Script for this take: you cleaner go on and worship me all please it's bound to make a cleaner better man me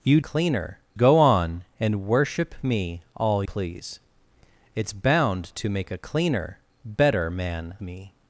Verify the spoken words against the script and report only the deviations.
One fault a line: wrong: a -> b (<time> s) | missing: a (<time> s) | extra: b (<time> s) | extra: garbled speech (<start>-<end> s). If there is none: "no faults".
no faults